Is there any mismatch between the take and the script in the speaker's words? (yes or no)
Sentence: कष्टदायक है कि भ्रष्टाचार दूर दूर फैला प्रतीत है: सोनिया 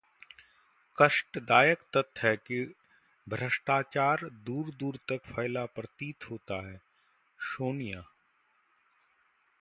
yes